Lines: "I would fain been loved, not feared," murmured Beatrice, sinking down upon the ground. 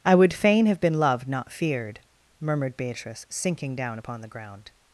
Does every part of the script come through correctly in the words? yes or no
no